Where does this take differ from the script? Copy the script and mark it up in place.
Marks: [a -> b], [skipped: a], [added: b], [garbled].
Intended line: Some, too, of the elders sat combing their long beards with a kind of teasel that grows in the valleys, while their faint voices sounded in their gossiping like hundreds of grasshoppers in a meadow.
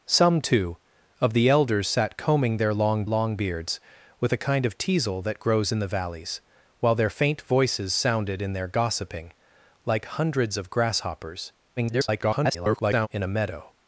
Some, too, of the elders sat combing their long [added: long] beards with a kind of teasel that grows in the valleys, while their faint voices sounded in their gossiping like hundreds of grasshoppers [garbled] in a meadow.